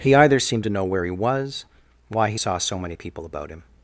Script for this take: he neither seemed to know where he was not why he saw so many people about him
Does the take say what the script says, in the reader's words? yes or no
no